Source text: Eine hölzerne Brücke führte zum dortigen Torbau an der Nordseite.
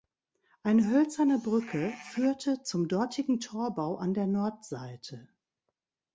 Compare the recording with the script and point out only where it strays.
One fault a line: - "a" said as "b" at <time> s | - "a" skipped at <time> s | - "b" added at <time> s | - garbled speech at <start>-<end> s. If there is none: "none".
none